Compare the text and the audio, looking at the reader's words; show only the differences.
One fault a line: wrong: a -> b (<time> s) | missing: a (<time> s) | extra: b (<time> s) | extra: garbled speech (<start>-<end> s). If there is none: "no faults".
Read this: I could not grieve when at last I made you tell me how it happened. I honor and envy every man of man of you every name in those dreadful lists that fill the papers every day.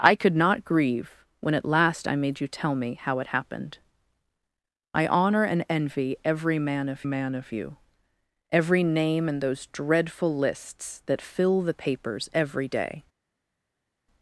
no faults